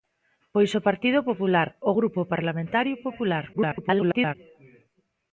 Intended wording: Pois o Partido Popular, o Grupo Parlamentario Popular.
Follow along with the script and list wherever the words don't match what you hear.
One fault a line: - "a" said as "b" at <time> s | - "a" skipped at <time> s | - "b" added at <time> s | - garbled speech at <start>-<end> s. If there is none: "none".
- garbled speech at 3.5-4.4 s